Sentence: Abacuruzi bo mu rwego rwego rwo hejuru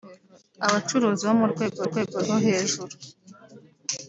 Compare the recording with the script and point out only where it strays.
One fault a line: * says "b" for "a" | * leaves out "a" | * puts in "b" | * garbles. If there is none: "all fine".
all fine